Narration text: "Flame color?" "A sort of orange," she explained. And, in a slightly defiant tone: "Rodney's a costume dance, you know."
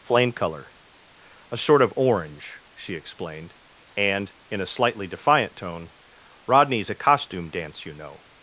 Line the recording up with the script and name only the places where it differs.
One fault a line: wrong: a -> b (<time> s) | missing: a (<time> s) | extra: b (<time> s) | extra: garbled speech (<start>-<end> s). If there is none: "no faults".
no faults